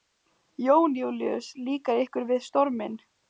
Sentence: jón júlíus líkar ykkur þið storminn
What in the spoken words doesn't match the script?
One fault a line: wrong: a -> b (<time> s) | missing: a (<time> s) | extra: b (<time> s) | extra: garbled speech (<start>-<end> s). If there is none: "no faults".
wrong: þið -> við (2.3 s)